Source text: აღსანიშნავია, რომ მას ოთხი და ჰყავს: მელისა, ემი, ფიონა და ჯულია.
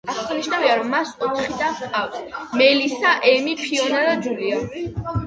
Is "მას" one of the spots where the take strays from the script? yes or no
no